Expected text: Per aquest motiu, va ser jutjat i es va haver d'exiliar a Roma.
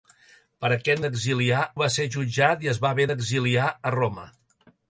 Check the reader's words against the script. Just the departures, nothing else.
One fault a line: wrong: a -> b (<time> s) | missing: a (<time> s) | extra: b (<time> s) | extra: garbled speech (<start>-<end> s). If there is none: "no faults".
wrong: motiu -> d'exiliar (1.1 s)